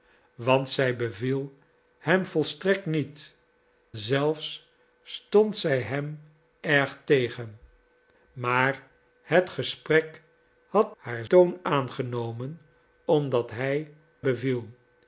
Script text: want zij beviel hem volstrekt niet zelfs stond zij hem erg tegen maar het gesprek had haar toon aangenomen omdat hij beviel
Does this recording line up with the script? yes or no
yes